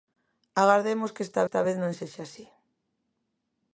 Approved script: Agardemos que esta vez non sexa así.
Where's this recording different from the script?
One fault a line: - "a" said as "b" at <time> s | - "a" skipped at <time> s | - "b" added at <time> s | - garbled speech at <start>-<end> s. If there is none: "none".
- "esta" added at 1.4 s